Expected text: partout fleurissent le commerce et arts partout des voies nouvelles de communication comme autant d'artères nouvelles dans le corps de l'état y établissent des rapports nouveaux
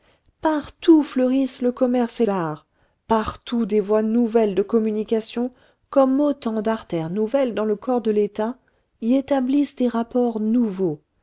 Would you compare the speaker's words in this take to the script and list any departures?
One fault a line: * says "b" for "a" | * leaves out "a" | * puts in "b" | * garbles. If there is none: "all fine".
all fine